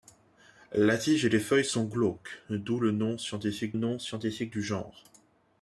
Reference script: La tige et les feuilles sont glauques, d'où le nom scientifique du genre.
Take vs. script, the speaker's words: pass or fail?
fail